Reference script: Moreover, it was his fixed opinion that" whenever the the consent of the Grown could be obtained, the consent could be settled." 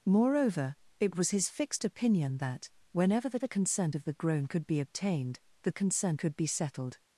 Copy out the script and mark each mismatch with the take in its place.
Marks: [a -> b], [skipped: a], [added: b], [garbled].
Moreover, it was his fixed opinion that" whenever the the consent of the Grown could be obtained, the consent could be settled."